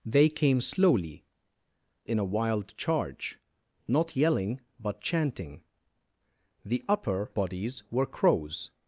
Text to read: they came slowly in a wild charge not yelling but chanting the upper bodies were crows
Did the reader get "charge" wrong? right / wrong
right